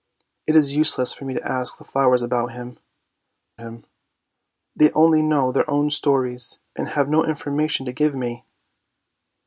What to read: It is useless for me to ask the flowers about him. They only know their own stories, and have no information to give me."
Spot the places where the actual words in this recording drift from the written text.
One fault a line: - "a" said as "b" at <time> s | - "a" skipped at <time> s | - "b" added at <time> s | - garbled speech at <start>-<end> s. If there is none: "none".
- "him" added at 3.6 s